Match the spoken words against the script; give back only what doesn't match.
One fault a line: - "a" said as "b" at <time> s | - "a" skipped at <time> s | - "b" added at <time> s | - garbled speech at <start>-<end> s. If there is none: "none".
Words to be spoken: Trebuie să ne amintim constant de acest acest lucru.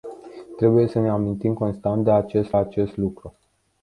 none